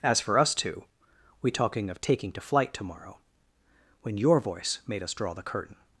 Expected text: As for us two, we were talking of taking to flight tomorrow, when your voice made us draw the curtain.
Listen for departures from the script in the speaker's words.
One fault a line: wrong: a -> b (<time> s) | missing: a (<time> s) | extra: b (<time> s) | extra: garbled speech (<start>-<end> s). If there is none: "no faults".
missing: were (1.5 s)